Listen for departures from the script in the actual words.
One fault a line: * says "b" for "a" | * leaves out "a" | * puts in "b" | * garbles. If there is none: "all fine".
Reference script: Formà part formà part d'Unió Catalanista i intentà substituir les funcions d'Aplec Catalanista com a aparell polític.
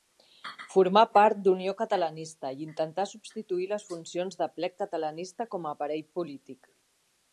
* leaves out "formà part"